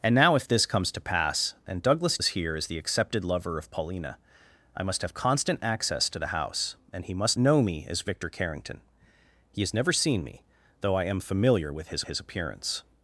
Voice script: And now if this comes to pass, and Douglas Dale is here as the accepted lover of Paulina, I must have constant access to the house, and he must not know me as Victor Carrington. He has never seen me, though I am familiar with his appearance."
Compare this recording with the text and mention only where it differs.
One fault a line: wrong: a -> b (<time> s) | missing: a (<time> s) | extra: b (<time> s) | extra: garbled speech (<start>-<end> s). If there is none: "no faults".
missing: Dale (2.2 s)
missing: not (7.4 s)
extra: his (12.1 s)